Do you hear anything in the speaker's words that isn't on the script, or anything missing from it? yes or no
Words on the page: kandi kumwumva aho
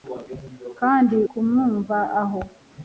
no